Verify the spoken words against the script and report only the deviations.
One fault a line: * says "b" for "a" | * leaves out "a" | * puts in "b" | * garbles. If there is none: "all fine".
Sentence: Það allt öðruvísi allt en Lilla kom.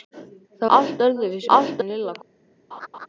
all fine